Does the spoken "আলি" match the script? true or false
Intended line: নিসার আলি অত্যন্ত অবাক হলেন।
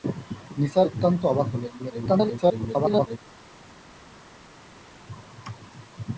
false